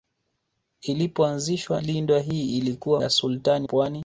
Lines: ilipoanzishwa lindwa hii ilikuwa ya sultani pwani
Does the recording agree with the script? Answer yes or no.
yes